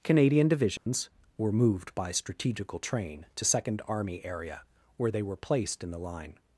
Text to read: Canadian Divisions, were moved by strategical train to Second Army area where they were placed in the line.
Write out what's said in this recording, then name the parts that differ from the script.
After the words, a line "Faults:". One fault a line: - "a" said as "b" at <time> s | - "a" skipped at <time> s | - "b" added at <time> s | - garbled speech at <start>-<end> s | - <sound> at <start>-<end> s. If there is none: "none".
Canadian Divisions, were moved by strategical train to Second Army area where they were placed in the line.
Faults:
- dropout at 0.8-0.9 s